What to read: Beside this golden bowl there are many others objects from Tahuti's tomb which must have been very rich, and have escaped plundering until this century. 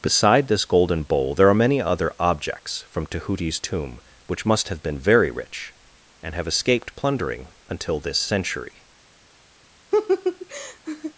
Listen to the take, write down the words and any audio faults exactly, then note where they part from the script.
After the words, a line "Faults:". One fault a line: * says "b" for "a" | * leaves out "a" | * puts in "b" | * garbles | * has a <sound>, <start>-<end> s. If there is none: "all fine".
Beside this golden bowl there are many other objects from Tahuti's tomb which must have been very rich, and have escaped plundering until this century.
Faults:
* says "other" for "others"
* has a laugh, 9.9-11.1 s